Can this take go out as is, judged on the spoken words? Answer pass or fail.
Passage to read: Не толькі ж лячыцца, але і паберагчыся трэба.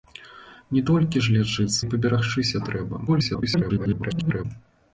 fail